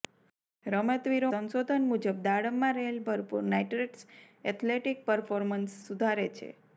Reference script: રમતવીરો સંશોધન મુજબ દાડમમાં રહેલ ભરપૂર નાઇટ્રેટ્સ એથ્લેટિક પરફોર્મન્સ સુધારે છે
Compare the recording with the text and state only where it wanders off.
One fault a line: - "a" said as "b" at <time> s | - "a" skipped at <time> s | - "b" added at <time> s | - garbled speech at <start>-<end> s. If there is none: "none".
none